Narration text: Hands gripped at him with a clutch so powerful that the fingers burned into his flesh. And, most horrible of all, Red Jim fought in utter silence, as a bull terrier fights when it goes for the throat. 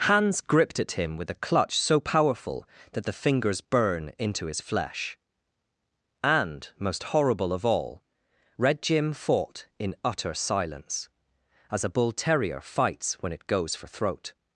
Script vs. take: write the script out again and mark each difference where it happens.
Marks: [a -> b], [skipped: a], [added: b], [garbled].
Hands gripped at him with a clutch so powerful that the fingers [burned -> burn] into his flesh. And, most horrible of all, Red Jim fought in utter silence, as a bull terrier fights when it goes for [skipped: the] throat.